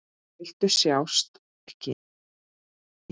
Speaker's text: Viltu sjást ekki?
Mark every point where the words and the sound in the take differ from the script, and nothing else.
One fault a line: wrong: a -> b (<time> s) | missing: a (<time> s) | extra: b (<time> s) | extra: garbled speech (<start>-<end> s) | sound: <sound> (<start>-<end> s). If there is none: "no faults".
no faults